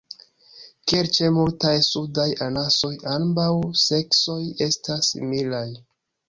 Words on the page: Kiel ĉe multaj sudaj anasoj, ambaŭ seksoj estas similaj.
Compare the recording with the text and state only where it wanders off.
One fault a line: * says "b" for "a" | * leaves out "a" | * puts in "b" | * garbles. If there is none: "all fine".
all fine